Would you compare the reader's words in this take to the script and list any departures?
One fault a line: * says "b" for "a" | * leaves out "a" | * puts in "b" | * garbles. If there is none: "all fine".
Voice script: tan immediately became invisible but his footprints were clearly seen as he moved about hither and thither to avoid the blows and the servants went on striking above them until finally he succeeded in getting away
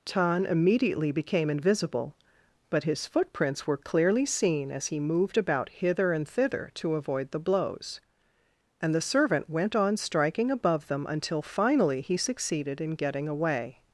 * says "servant" for "servants"